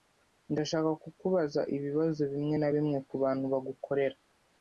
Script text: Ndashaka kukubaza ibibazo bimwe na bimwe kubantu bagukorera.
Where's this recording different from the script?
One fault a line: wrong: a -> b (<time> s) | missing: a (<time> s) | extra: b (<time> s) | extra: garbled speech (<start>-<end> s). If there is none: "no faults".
no faults